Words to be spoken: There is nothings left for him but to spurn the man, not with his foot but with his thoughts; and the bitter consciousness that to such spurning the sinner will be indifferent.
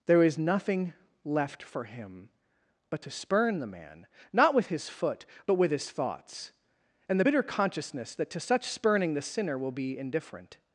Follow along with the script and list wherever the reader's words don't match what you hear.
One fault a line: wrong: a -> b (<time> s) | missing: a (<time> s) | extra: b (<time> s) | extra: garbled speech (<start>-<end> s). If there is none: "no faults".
wrong: nothings -> nothing (0.4 s)